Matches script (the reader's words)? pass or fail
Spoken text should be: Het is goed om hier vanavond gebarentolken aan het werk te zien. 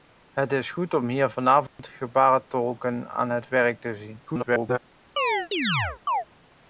fail